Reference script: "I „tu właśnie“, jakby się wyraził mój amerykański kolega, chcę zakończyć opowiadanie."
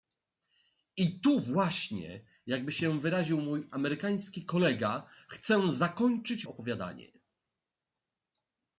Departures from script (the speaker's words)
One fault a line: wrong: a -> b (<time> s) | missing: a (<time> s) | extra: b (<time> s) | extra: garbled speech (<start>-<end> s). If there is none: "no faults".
no faults